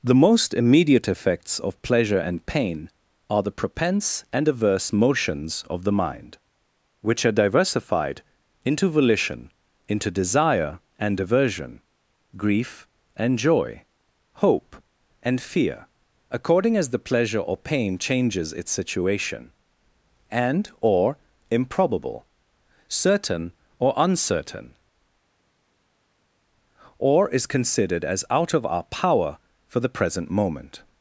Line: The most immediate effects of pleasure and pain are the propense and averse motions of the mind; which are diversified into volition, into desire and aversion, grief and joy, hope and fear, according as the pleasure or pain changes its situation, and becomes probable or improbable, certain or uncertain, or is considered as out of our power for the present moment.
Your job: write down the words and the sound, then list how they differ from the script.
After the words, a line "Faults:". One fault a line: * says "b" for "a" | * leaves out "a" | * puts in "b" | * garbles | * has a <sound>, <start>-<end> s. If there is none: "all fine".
The most immediate effects of pleasure and pain are the propense and averse motions of the mind; which are diversified into volition, into desire and aversion, grief and joy, hope and fear, according as the pleasure or pain changes its situation, and or improbable, certain or uncertain, or is considered as out of our power for the present moment.
Faults:
* leaves out "becomes probable"